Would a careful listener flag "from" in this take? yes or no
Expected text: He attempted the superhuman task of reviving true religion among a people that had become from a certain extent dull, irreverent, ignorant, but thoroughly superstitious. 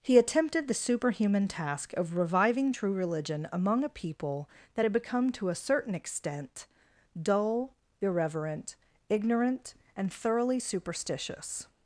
yes